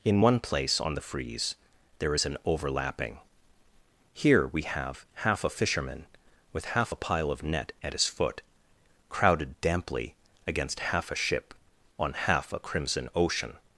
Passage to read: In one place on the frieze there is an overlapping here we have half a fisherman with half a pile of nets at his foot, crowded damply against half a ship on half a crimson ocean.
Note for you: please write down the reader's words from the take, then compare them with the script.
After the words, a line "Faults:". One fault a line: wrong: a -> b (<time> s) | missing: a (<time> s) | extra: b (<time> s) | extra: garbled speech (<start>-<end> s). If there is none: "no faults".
In one place on the frieze there is an overlapping here we have half a fisherman with half a pile of net at his foot, crowded damply against half a ship on half a crimson ocean.
Faults:
wrong: nets -> net (7.4 s)